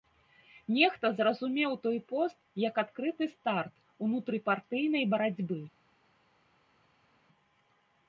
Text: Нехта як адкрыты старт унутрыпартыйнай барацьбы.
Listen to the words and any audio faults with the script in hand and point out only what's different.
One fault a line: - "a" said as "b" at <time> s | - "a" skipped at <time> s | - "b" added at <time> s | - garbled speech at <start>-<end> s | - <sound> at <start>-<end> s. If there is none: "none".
- "зразумеў той пост" added at 1.2 s